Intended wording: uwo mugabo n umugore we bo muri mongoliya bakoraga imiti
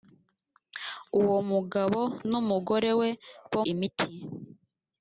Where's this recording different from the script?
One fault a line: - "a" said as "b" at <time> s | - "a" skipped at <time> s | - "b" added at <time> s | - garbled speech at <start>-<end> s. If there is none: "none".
- "muri mongoliya bakoraga" skipped at 3.6 s